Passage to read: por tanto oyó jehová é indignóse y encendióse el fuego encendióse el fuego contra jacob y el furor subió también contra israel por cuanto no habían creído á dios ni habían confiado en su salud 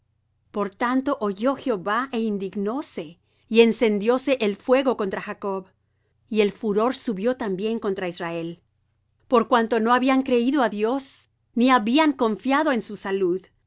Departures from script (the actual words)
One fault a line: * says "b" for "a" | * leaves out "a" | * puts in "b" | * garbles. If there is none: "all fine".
* leaves out "encendióse el fuego"